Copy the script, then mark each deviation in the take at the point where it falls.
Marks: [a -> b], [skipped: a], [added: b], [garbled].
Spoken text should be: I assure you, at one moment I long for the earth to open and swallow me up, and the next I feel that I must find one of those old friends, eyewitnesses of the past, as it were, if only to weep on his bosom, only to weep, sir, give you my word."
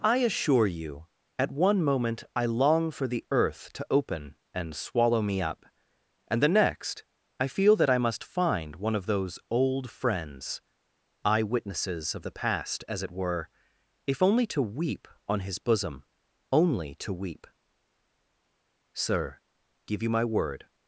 I assure you, at one moment I long for the earth to open and swallow me up, and the next I feel that I must find one of those old friends, eyewitnesses of the past, as it were, if only to weep on his bosom, only to weep, sir, give you my word."